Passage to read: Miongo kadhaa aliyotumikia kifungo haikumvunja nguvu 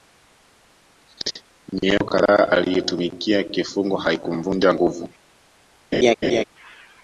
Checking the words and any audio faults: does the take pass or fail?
fail